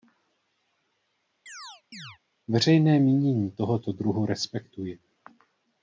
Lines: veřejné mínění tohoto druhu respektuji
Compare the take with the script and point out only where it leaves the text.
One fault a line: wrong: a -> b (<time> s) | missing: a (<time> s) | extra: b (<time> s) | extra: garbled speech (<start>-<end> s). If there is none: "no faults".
no faults